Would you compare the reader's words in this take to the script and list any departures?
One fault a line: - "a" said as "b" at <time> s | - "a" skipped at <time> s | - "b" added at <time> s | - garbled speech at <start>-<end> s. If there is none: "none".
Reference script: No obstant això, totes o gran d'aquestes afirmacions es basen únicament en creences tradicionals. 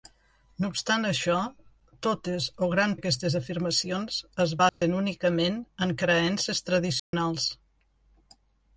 none